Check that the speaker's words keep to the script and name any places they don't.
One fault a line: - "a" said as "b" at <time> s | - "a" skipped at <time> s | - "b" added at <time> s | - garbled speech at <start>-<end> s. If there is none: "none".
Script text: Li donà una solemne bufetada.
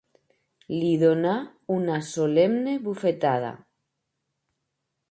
none